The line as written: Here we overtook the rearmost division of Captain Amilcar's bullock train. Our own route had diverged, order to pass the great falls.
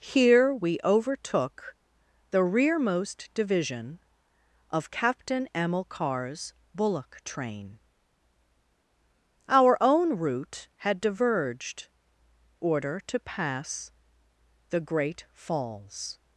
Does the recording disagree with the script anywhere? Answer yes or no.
no